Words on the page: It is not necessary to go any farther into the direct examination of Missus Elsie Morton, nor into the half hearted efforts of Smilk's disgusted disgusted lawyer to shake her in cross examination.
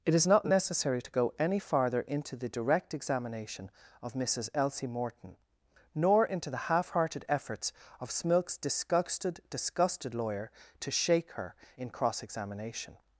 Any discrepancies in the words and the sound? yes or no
no